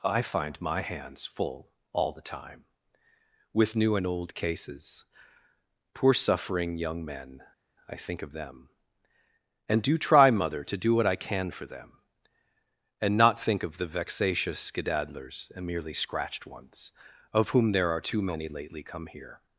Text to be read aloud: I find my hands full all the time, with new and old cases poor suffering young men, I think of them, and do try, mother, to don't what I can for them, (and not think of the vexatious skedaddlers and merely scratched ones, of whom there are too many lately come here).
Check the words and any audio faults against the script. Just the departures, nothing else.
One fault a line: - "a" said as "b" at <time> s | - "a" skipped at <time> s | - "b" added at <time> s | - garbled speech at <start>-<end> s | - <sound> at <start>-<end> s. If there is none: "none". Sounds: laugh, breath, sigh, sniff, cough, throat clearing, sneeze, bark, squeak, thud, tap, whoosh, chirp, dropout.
- "don't" said as "do" at 10.8 s